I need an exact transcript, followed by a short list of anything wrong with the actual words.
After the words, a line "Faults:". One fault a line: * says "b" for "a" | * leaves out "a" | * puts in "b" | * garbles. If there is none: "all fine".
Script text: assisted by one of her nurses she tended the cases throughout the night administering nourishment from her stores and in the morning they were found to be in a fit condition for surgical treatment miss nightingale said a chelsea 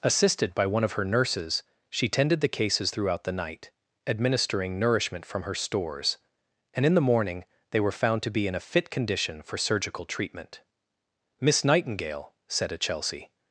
assisted by one of her nurses she tended the cases throughout the night administering nourishment from her stores and in the morning they were found to be in a fit condition for surgical treatment miss nightingale said a chelsea
Faults:
all fine